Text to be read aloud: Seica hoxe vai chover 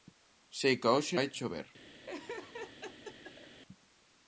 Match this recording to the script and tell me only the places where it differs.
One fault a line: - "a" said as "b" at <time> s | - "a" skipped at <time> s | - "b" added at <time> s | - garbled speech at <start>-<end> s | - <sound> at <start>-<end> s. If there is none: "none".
- laugh at 2.1-3.6 s